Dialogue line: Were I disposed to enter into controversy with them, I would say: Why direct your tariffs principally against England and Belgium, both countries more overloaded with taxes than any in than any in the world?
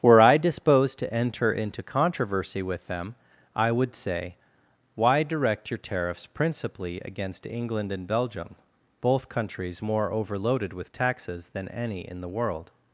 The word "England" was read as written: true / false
true